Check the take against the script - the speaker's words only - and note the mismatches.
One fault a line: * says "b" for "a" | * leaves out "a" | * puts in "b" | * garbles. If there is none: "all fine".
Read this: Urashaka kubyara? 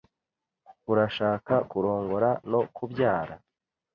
* puts in "kurongora no"